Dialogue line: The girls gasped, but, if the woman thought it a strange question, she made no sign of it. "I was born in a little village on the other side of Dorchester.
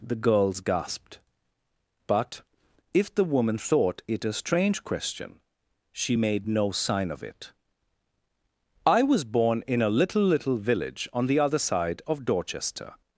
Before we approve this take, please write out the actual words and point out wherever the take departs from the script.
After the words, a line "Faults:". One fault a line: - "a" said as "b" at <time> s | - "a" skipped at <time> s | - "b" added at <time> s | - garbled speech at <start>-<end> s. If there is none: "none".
The girls gasped, but, if the woman thought it a strange question, she made no sign of it. "I was born in a little little village on the other side of Dorchester.
Faults:
- "little" added at 10.2 s